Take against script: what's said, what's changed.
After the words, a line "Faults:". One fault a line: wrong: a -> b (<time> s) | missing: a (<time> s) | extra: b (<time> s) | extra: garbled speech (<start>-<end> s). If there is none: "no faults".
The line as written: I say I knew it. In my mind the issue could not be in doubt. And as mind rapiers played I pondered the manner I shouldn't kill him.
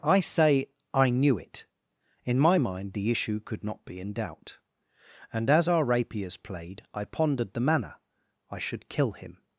I say I knew it. In my mind the issue could not be in doubt. And as our rapiers played I pondered the manner I should kill him.
Faults:
wrong: mind -> our (5.7 s)
wrong: shouldn't -> should (8.6 s)